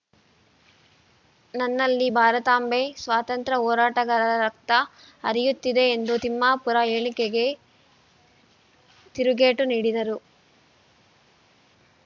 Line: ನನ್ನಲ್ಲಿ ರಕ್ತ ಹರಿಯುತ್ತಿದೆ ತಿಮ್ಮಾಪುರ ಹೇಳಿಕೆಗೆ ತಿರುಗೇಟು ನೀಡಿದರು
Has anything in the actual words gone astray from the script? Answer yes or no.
yes